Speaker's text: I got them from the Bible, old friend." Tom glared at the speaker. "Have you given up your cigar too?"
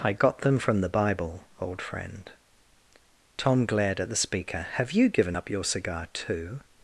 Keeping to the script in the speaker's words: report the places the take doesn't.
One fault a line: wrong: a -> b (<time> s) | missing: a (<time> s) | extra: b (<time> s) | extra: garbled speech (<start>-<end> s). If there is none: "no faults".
no faults